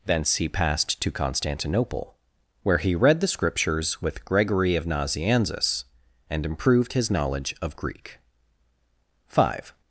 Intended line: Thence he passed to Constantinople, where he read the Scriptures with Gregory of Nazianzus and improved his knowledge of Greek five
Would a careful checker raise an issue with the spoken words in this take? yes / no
no